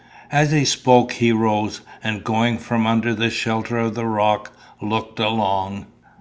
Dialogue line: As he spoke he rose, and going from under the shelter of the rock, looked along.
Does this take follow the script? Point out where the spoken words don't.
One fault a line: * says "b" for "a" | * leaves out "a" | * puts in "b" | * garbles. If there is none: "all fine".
all fine